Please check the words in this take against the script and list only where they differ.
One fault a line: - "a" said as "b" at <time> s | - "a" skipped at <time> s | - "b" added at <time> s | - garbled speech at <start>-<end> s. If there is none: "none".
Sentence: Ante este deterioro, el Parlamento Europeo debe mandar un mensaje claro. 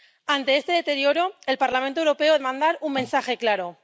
- "debe" skipped at 2.4 s